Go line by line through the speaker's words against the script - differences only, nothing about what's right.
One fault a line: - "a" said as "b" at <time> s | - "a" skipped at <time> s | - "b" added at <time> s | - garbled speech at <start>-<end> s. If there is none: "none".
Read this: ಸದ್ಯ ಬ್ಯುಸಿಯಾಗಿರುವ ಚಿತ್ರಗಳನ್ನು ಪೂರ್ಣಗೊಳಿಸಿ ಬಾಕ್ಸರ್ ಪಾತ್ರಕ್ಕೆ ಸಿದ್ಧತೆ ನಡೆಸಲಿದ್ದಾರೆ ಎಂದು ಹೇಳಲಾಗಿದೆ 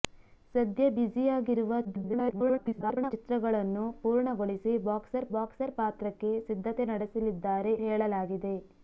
- garbled speech at 1.8-3.1 s
- "ಬಾಕ್ಸರ್" added at 5.3 s
- "ಎಂದು" skipped at 7.7 s